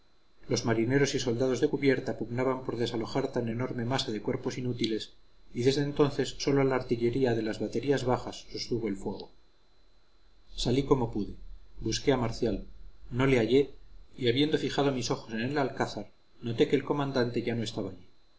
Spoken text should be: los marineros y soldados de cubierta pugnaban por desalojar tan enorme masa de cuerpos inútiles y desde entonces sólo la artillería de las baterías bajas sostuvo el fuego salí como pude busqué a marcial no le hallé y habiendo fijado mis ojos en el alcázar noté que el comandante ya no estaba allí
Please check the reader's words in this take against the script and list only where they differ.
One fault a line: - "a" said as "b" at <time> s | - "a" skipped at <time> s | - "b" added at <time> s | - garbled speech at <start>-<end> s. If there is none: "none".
none